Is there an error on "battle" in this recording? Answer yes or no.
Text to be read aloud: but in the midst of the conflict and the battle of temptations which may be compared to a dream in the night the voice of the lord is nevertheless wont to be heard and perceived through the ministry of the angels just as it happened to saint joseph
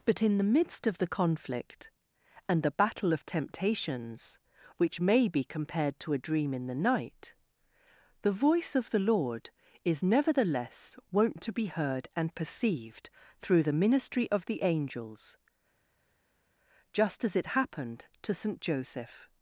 no